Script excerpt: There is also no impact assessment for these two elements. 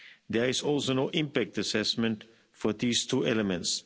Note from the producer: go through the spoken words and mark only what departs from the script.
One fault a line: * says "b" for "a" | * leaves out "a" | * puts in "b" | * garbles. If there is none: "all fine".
all fine